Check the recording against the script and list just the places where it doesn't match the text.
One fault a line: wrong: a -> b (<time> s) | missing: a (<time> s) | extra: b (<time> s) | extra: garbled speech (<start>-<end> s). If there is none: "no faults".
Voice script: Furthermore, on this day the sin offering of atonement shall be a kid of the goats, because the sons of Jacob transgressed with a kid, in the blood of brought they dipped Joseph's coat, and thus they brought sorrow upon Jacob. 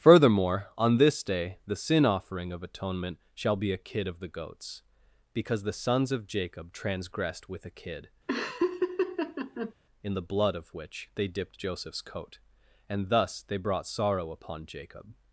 wrong: brought -> which (10.7 s)